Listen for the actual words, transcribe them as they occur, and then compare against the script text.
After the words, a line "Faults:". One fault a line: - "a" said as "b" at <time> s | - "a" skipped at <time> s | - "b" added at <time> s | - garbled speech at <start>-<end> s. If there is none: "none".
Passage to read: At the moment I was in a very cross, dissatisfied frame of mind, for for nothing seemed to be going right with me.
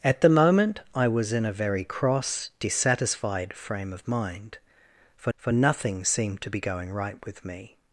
At the moment I was in a very cross, dissatisfied frame of mind, for for nothing seemed to be going right with me.
Faults:
none